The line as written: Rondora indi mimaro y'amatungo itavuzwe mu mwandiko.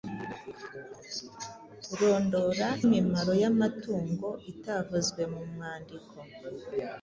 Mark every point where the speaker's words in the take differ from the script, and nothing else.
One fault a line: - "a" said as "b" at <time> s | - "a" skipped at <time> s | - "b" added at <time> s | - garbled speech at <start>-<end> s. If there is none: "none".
- "indi" skipped at 2.7 s